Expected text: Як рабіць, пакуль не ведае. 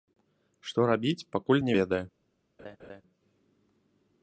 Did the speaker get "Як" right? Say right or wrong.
wrong